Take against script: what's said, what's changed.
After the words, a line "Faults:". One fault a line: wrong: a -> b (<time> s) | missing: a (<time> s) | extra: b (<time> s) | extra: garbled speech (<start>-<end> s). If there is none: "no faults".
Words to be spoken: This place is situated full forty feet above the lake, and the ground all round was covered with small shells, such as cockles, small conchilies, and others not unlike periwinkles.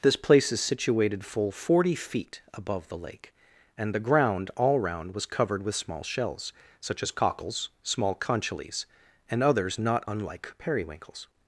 This place is situated full forty feet above the lake, and the ground all round was covered with small shells, such as cockles, small conchilies, and others not unlike periwinkles.
Faults:
no faults